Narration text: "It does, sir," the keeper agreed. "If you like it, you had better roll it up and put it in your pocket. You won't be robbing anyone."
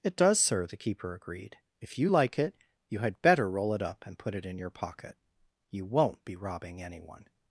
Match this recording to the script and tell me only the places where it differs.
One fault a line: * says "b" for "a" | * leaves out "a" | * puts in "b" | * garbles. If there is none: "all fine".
all fine